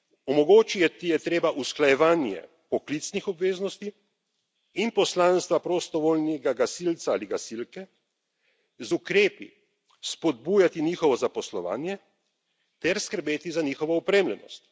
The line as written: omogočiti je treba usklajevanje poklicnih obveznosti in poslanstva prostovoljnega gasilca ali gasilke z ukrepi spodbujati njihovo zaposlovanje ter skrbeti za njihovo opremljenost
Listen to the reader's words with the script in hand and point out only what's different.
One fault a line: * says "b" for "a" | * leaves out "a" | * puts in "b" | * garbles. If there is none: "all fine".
all fine